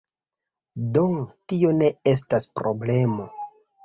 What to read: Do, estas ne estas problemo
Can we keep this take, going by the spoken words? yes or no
no